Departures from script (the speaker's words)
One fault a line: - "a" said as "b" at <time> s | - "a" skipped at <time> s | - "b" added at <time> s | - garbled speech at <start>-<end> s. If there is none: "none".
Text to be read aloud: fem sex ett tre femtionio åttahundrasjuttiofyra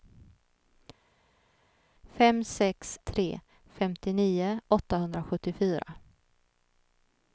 - "ett" skipped at 3.0 s